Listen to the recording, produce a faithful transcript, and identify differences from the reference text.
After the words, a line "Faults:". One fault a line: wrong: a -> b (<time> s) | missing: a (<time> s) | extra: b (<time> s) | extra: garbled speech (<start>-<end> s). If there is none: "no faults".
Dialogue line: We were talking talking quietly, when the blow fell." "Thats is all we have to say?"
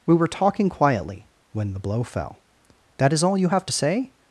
We were talking quietly, when the blow fell." "That is all you have to say?"
Faults:
missing: talking (0.7 s)
wrong: Thats -> That (3.0 s)
wrong: we -> you (3.4 s)